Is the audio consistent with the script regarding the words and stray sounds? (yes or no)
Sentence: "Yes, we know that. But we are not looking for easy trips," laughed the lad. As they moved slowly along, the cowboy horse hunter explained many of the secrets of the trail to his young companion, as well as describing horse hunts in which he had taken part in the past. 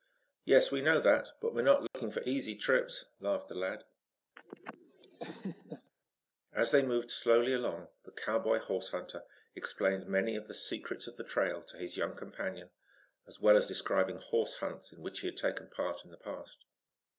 no